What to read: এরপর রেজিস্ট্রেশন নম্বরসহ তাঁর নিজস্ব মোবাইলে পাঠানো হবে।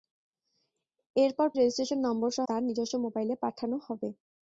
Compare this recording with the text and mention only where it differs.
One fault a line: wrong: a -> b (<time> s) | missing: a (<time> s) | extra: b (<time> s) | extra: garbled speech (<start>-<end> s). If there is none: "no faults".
no faults